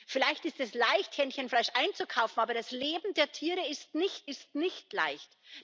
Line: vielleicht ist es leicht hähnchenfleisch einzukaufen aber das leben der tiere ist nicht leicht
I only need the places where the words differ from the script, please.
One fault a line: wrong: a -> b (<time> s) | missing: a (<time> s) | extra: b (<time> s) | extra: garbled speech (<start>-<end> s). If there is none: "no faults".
extra: ist nicht (4.3 s)